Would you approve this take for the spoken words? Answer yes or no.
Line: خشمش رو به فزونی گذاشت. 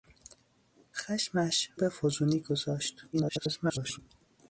no